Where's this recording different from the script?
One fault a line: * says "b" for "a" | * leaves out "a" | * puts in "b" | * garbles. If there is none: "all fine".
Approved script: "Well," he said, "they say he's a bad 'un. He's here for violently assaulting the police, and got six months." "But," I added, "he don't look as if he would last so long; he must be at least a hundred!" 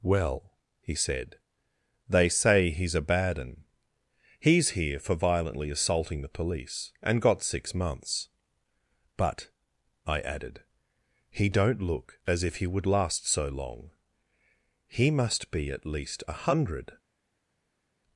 all fine